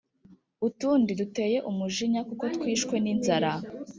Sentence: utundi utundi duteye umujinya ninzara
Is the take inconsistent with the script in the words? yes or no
yes